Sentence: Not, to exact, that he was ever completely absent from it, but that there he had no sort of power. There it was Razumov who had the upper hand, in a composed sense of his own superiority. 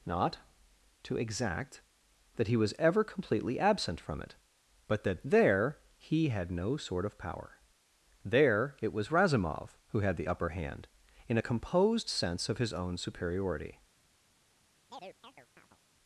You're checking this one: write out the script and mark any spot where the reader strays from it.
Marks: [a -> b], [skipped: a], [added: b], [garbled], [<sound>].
Not, to exact, that he was ever completely absent from it, but that there he had no sort of power. There it was Razumov who had the upper hand, in a composed sense of his own superiority. [chirp]